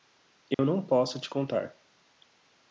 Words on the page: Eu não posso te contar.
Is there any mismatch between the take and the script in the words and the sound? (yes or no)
yes